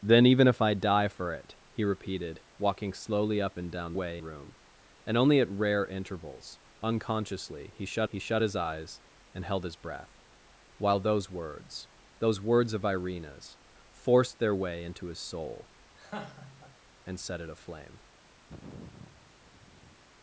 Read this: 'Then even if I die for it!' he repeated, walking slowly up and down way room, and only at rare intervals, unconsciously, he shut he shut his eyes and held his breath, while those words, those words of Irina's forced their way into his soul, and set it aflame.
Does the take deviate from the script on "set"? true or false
false